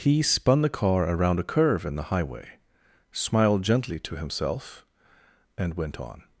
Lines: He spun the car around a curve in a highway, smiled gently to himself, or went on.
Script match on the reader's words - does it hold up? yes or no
no